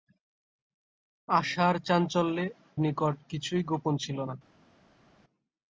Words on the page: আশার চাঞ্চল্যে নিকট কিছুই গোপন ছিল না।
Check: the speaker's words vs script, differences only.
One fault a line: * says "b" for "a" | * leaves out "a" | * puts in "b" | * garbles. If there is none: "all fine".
all fine